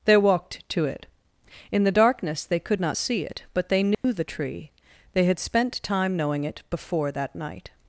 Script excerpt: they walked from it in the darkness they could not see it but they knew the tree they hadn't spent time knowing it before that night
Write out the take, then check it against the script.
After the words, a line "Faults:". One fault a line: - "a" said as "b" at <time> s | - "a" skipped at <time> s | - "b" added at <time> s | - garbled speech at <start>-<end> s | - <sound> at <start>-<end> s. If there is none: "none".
they walked to it in the darkness they could not see it but they knew the tree they had spent time knowing it before that night
Faults:
- "from" said as "to" at 0.7 s
- dropout at 3.9-4.0 s
- "hadn't" said as "had" at 5.2 s